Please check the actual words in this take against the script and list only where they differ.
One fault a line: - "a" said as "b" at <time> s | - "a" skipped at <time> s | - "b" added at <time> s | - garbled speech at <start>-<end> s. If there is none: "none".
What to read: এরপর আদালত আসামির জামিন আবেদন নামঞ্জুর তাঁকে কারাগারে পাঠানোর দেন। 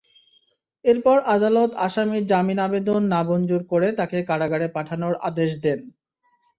- "করে" added at 3.7 s
- "আদেশ" added at 5.3 s